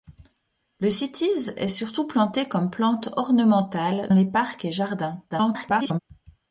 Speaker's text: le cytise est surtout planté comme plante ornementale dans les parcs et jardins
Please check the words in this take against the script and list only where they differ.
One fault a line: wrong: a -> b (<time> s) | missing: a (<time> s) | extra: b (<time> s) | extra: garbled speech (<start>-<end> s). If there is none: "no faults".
missing: dans (4.1 s)
extra: garbled speech (5.3-6.0 s)